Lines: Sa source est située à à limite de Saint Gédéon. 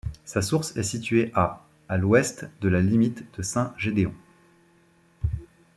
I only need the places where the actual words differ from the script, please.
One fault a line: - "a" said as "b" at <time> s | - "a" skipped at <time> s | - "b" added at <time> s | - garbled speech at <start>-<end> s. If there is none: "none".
- "l'ouest de la" added at 2.0 s